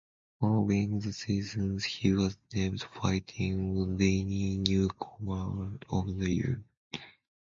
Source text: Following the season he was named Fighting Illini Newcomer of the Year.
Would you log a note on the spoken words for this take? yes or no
no